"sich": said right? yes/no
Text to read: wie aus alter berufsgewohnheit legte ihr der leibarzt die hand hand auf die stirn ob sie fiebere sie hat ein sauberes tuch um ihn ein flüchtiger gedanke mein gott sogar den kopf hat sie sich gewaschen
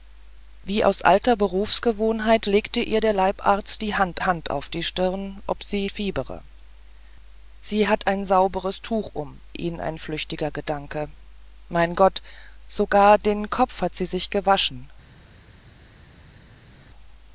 yes